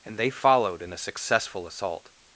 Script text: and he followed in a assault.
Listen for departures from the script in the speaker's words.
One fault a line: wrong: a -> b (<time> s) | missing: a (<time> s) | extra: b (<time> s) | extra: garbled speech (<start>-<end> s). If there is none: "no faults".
wrong: he -> they (0.2 s)
extra: successful (1.0 s)